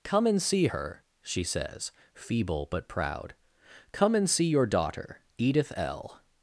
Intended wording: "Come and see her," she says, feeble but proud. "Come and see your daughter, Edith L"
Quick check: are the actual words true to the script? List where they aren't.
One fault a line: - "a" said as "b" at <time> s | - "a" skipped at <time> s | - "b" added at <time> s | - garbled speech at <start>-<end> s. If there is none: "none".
none